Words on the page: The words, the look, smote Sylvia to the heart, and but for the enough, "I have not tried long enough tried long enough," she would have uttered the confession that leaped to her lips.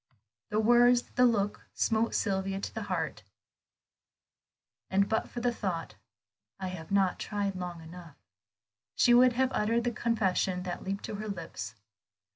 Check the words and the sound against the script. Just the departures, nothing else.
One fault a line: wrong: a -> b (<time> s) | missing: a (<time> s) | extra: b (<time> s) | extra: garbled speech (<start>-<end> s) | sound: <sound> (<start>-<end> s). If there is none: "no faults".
wrong: enough -> thought (5.5 s)
missing: tried long enough (8.2 s)